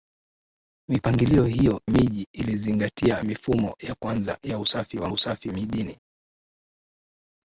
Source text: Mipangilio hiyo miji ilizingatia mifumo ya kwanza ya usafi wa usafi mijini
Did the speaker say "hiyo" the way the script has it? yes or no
yes